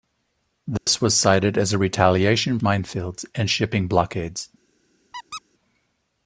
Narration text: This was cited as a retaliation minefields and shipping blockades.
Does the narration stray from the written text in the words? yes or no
no